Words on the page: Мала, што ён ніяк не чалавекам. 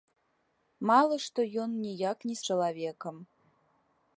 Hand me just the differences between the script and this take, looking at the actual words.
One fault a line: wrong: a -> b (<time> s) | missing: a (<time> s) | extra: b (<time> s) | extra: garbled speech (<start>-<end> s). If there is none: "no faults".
no faults